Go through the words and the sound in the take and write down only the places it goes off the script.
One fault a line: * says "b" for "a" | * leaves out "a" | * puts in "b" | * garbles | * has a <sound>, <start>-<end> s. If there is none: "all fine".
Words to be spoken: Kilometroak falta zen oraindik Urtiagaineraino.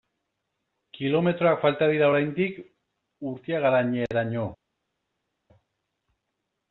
* says "dira" for "zen"